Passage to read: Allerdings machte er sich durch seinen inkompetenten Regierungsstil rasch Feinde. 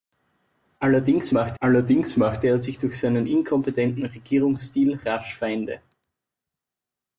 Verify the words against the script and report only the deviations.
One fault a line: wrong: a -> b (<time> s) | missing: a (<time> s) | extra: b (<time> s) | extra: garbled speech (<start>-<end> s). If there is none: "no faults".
extra: allerdings machte (1.6 s)